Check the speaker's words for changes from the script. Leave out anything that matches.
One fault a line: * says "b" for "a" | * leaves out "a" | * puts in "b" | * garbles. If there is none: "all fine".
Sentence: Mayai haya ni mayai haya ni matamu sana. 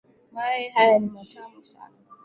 * leaves out "mayai haya ni"